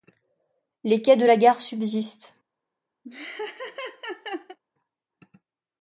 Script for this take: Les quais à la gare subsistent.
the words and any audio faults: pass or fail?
fail